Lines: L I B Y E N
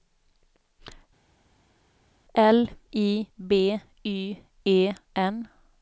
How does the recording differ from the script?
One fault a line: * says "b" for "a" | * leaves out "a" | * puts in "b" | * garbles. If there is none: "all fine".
all fine